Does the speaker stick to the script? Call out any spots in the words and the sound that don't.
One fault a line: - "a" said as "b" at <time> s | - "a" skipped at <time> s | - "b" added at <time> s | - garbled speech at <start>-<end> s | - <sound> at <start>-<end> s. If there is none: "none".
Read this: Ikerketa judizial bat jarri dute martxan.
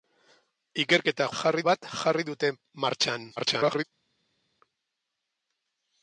- "judizial" said as "jarri" at 1.4 s
- garbled speech at 3.4-3.8 s